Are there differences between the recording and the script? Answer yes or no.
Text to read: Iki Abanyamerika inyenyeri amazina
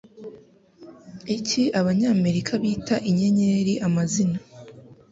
yes